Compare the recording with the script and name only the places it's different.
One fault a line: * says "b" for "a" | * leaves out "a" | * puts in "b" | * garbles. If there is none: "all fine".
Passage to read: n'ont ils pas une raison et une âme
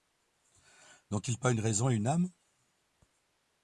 all fine